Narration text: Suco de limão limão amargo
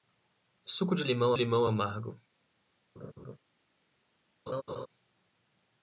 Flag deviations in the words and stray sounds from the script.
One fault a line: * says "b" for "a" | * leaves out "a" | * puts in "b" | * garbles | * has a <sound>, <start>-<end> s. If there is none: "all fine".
* has a laugh, 3.0-3.4 s
* has a laugh, 4.5-4.9 s